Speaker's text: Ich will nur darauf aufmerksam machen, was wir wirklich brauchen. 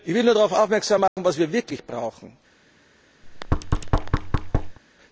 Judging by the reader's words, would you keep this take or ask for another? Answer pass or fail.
pass